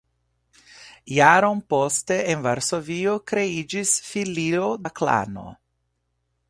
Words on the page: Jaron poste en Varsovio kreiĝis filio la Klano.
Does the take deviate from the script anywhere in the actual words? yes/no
no